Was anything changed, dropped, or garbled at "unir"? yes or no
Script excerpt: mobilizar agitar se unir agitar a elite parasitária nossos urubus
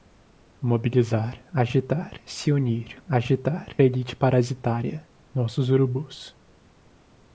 no